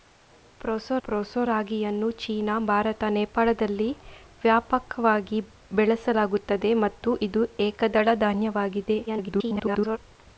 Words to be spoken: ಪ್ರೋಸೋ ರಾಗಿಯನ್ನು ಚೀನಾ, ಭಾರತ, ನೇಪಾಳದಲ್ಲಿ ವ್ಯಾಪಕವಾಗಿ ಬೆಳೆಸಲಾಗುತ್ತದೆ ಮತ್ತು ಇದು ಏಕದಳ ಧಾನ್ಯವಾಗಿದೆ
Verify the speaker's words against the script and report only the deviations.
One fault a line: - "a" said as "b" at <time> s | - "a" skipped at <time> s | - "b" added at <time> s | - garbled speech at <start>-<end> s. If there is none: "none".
- "ಪ್ರೋಸೋ" added at 1.0 s
- garbled speech at 9.1-10.0 s